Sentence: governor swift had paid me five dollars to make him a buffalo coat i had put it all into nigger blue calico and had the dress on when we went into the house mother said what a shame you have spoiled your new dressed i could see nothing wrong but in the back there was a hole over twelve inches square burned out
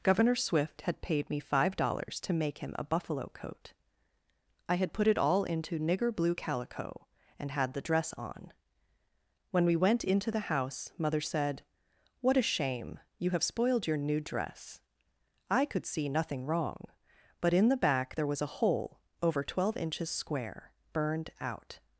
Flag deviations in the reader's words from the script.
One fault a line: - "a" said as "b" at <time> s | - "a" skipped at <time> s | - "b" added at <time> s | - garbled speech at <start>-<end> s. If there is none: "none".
- "dressed" said as "dress" at 14.2 s